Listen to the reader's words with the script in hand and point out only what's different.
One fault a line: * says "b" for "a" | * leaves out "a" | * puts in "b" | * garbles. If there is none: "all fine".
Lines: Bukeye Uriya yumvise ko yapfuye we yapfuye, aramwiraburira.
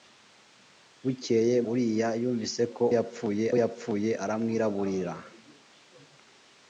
all fine